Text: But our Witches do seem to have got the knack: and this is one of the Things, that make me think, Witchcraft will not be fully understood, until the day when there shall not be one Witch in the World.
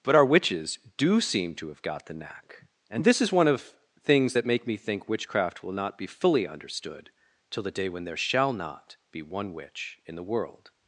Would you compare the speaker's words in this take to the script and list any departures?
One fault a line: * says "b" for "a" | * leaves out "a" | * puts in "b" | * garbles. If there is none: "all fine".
* leaves out "the"
* says "till" for "until"